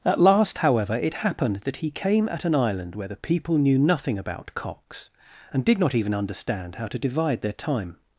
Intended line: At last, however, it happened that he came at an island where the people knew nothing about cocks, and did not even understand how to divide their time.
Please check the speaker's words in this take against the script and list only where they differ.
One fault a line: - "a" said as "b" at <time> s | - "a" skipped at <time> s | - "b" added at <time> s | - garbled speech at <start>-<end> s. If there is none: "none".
none